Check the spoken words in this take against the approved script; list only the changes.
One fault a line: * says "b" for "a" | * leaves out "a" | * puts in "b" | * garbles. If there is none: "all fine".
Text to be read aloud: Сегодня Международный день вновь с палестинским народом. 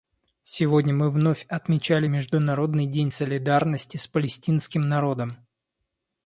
* puts in "мы вновь отмечали"
* says "солидарности" for "вновь"